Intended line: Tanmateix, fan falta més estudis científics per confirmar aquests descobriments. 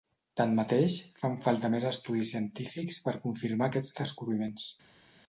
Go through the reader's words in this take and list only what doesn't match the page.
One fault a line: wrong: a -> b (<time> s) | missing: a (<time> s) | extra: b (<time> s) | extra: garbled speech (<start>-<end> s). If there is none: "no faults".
no faults